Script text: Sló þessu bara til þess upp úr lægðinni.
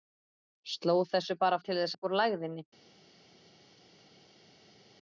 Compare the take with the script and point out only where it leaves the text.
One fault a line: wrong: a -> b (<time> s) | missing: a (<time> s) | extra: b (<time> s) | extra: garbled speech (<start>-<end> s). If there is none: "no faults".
no faults